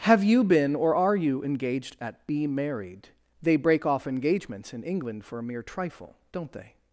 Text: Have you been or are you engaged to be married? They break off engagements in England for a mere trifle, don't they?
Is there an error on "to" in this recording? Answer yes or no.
yes